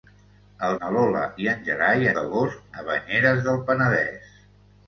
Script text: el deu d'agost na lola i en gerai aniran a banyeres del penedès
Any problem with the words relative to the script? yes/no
yes